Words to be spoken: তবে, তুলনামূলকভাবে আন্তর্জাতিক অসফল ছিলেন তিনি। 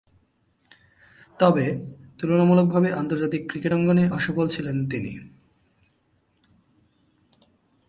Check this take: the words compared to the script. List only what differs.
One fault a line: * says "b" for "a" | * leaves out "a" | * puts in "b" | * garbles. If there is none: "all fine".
* puts in "ক্রিকেট অঙ্গনে"